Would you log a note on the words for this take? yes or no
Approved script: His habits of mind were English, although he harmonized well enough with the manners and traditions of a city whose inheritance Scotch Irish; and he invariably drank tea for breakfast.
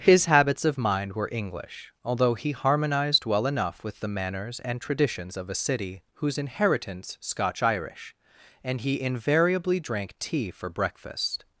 no